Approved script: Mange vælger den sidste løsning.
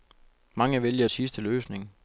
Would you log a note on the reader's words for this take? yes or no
yes